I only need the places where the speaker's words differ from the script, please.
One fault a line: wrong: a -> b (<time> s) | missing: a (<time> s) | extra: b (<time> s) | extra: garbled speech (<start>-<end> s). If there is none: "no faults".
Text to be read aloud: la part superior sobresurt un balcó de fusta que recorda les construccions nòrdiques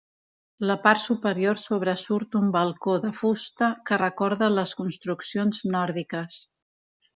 no faults